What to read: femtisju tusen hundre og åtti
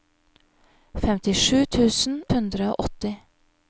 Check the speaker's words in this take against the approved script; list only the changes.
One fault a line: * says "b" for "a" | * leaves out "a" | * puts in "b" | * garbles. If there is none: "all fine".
all fine